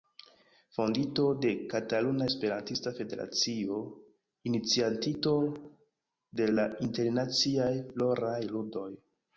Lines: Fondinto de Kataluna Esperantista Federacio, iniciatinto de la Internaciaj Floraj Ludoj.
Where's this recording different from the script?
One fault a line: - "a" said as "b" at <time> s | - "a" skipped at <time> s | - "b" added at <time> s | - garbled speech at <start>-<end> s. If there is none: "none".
none